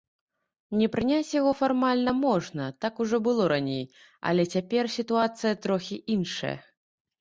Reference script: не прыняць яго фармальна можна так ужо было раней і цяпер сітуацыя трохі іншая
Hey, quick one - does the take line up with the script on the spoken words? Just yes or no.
no